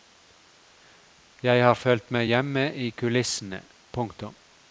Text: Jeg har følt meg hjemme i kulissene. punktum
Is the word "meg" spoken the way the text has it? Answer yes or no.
yes